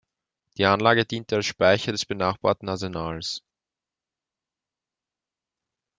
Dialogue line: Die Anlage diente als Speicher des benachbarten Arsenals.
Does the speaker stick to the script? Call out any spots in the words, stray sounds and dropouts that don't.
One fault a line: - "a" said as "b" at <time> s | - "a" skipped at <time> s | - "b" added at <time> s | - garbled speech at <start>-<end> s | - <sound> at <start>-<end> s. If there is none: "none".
none